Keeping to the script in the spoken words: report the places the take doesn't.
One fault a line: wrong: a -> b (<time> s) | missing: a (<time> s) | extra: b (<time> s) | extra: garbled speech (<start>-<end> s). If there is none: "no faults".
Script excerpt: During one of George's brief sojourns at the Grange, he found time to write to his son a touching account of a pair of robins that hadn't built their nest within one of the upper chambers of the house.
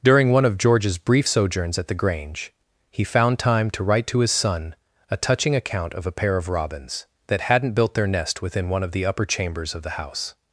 no faults